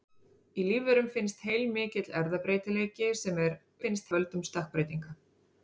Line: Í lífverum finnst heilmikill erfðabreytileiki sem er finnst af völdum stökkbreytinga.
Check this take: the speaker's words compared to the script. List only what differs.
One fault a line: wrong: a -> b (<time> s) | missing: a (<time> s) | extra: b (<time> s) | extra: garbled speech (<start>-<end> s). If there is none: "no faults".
no faults